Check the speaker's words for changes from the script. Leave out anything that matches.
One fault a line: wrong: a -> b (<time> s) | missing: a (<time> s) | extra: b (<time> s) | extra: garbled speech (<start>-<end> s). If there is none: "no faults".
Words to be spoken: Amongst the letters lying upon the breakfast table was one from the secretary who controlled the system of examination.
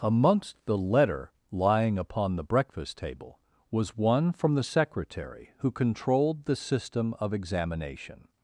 wrong: letters -> letter (0.8 s)